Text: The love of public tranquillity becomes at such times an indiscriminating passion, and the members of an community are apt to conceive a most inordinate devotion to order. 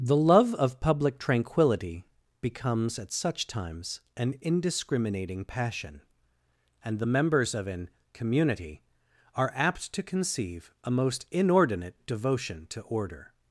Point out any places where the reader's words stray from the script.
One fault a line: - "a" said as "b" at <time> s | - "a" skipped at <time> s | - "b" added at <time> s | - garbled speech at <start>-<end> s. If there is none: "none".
none